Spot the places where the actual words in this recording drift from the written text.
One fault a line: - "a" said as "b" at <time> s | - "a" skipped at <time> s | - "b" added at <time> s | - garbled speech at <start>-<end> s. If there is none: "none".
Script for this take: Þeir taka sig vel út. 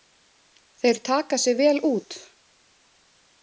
none